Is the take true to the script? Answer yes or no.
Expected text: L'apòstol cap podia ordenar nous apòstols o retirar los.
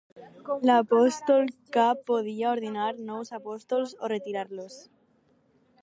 yes